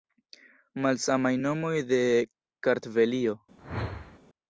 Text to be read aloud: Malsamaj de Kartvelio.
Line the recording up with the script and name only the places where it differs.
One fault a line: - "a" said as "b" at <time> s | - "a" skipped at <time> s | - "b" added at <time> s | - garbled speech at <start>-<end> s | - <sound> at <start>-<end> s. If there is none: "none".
- "nomoj" added at 1.4 s
- whoosh at 3.6-4.2 s